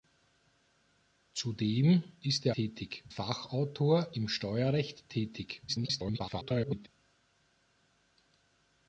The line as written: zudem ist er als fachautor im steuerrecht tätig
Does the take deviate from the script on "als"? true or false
true